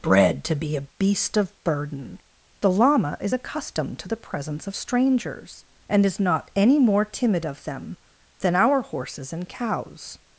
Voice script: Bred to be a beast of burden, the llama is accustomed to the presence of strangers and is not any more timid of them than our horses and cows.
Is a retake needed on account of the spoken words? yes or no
no